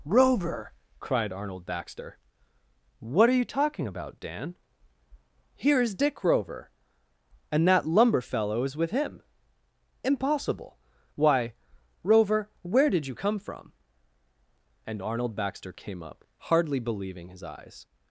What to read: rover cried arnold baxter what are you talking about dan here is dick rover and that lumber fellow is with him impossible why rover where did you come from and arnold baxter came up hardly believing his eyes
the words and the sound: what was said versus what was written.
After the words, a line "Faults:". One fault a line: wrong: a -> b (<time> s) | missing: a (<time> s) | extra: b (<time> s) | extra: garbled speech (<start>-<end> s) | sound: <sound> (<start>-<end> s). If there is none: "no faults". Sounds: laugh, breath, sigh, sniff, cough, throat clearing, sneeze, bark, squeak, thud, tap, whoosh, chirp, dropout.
rover cried arnold baxter what are you talking about dan here is dick rover and that lumber fellow is with him impossible why rover where did you come from and arnold baxter came up hardly believing his eyes
Faults:
no faults